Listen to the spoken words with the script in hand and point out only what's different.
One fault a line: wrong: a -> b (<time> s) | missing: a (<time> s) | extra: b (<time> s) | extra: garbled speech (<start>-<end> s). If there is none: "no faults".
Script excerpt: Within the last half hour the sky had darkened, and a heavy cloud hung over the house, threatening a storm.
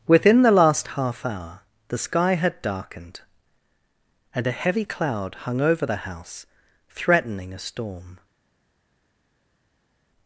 no faults